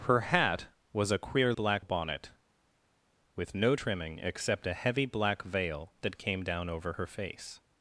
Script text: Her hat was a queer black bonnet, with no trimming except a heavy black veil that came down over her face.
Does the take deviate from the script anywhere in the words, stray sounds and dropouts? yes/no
no